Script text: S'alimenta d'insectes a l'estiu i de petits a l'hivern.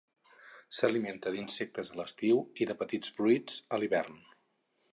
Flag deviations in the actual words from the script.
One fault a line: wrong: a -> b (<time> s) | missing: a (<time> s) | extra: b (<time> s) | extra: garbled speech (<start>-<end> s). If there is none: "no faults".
extra: fruits (3.2 s)